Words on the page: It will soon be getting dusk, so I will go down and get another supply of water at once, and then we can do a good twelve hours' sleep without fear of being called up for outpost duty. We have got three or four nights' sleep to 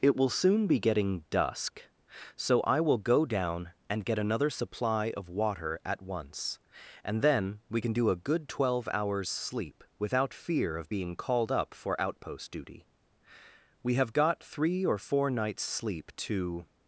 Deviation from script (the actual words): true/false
false